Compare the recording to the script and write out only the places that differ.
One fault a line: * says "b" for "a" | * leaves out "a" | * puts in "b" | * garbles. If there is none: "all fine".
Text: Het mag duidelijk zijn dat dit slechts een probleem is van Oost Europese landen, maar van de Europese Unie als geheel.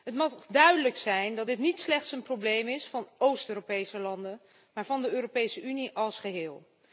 * puts in "niet"